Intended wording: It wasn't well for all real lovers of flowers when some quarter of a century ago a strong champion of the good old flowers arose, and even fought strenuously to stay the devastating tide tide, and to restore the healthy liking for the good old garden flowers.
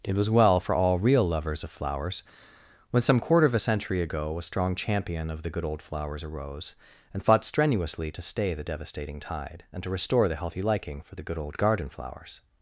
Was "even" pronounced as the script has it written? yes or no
no